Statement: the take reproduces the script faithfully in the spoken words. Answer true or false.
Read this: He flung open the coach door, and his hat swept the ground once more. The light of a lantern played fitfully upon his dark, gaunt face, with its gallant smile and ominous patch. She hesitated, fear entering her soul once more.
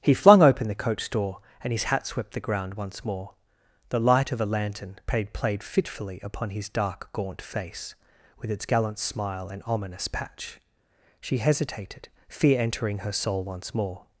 false